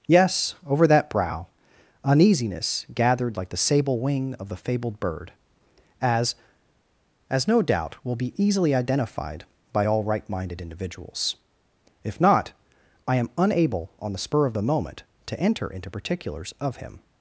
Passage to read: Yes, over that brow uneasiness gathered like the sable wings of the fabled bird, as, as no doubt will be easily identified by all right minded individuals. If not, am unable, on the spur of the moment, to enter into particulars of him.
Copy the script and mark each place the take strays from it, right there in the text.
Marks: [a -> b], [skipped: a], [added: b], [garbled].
Yes, over that brow uneasiness gathered like the sable [wings -> wing] of the fabled bird, as, as no doubt will be easily identified by all right minded individuals. If not, [added: I] am unable, on the spur of the moment, to enter into particulars of him.